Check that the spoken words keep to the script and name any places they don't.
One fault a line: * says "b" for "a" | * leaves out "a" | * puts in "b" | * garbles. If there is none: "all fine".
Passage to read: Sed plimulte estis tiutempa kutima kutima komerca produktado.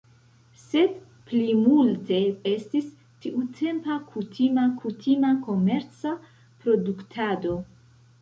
all fine